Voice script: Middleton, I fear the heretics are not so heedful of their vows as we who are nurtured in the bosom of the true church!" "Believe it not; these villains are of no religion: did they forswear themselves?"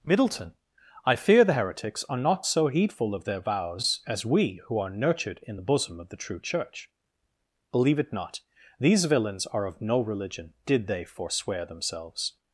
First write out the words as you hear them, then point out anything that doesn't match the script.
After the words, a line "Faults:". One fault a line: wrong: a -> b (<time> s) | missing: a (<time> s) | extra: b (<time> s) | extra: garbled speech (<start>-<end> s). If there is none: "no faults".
Middleton, I fear the heretics are not so heedful of their vows as we who are nurtured in the bosom of the true church!" "Believe it not; these villains are of no religion: did they forswear themselves?"
Faults:
no faults